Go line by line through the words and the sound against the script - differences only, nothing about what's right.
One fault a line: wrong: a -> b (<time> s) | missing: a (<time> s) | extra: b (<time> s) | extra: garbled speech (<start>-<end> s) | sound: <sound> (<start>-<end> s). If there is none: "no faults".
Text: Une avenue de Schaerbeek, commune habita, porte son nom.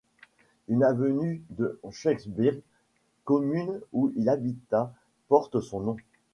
extra: où il (3.9 s)